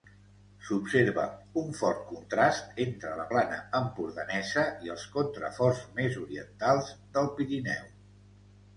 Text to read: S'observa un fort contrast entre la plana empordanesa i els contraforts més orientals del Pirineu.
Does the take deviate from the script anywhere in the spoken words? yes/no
no